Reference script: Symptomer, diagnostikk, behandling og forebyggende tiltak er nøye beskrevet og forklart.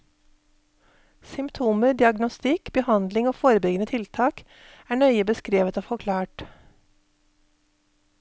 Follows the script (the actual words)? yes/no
yes